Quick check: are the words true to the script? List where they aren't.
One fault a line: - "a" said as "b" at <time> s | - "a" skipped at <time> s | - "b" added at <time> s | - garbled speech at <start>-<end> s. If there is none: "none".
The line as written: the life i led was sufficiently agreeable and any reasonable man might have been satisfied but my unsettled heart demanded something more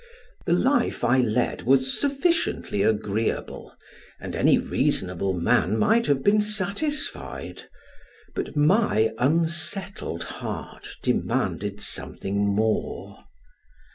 none